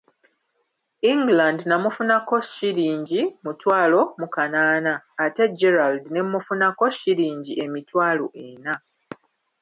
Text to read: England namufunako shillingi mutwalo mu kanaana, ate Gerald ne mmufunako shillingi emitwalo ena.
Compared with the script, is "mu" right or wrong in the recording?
right